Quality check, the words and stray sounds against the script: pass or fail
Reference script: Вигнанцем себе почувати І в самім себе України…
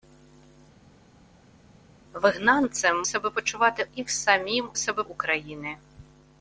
pass